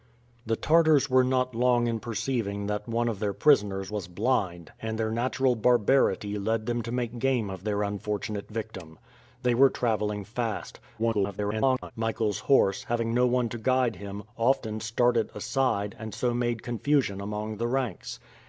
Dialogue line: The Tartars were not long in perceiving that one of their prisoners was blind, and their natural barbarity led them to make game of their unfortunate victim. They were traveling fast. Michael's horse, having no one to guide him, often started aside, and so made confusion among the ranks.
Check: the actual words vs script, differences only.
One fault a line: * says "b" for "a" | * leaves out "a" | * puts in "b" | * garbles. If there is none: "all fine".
* garbles